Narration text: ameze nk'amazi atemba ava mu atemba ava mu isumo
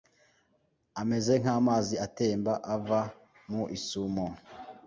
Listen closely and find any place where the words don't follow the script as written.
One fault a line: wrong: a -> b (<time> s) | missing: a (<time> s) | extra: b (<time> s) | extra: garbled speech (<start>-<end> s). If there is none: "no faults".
missing: atemba ava mu (3.6 s)